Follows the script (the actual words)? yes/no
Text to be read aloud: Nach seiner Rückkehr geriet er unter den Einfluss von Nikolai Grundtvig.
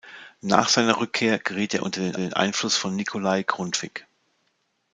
no